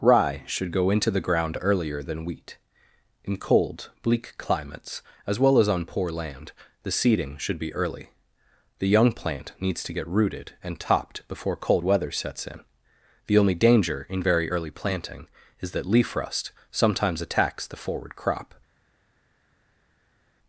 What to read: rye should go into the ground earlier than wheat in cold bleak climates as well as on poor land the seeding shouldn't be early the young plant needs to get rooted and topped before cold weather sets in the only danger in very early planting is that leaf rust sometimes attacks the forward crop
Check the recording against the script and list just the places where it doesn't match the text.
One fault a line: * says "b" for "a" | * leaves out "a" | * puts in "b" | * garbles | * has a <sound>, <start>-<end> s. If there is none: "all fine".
* says "should" for "shouldn't"